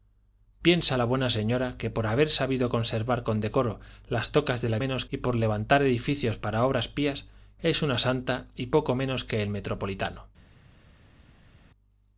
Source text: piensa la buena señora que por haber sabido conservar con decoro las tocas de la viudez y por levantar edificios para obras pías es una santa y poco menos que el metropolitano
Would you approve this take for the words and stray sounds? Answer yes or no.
no